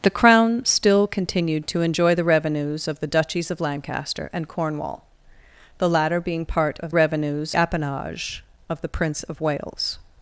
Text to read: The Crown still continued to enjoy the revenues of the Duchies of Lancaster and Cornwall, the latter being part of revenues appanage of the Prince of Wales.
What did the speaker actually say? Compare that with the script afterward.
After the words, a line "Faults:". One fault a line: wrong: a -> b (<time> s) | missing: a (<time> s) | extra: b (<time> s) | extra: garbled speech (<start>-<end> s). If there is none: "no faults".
The Crown still continued to enjoy the revenues of the Duchies of Lancaster and Cornwall, the latter being part of revenues appanage of the Prince of Wales.
Faults:
no faults